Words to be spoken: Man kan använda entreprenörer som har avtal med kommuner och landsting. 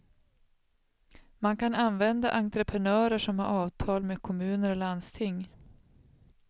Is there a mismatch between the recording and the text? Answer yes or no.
no